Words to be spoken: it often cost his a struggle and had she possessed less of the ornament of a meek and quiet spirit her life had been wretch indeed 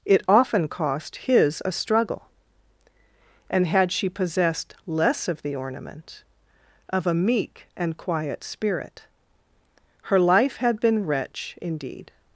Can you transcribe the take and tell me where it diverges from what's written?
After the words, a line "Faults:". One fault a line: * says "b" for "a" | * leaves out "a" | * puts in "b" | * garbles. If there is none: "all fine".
it often cost his a struggle and had she possessed less of the ornament of a meek and quiet spirit her life had been wretch indeed
Faults:
all fine